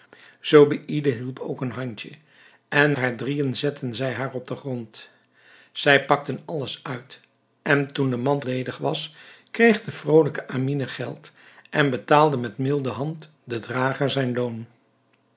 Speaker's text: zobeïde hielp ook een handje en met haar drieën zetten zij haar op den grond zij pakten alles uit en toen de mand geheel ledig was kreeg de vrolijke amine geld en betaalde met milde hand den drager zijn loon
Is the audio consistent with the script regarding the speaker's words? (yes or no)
no